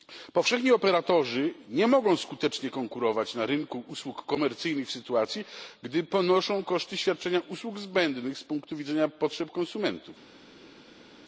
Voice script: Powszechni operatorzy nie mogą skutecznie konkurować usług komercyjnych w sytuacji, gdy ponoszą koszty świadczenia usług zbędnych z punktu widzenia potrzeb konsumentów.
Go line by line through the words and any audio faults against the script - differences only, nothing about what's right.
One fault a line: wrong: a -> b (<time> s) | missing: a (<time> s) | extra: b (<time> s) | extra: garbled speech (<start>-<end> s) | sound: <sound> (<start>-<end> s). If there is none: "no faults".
extra: na rynku (3.4 s)